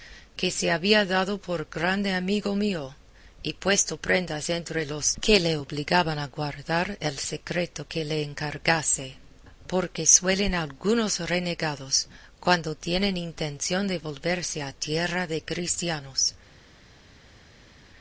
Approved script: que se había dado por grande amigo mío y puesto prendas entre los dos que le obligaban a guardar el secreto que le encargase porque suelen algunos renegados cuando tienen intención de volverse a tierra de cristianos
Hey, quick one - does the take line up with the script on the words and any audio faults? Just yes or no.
no